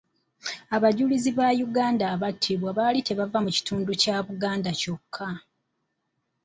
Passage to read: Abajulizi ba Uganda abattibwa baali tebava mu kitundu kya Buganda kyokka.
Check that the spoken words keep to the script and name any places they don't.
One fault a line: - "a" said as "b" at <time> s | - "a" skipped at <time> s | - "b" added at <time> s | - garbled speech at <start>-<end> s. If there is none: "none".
none